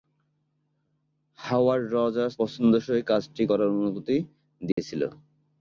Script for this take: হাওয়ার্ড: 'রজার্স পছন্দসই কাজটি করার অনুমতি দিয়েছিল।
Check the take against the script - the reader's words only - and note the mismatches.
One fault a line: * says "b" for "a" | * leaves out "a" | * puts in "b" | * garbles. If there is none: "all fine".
all fine